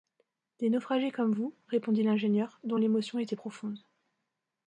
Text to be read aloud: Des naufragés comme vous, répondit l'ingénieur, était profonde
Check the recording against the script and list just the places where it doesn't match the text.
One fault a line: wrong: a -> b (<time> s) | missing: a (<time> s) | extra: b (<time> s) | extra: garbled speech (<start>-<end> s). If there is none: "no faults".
extra: dont l'émotion (2.6 s)